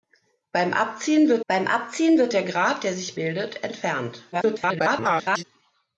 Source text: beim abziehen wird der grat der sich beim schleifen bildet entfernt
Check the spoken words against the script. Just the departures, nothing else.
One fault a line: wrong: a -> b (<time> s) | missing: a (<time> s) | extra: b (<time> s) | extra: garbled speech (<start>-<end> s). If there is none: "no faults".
extra: beim abziehen wird (1.5 s)
missing: beim schleifen (3.1 s)
extra: garbled speech (4.3-5.4 s)